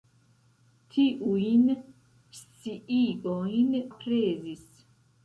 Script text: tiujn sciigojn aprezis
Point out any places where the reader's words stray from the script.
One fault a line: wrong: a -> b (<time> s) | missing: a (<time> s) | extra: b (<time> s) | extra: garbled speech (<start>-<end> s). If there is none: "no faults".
no faults